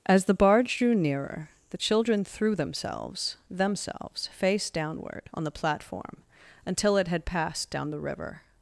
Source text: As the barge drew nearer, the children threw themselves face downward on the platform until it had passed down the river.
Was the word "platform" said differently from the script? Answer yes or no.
no